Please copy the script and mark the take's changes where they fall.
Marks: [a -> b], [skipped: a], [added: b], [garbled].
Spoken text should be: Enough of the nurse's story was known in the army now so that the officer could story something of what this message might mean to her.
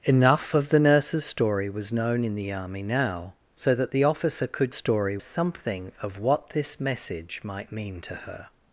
Enough of the nurse's story was known in the army now so that the officer could story something of what this message might mean to her.